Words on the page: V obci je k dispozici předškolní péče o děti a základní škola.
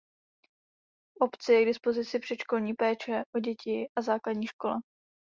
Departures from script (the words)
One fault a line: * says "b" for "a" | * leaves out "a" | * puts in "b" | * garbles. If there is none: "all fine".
all fine